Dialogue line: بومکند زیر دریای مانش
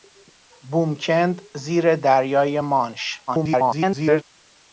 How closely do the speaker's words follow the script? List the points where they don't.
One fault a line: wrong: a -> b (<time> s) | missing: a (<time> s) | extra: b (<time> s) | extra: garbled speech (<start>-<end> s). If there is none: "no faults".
extra: garbled speech (3.3-4.2 s)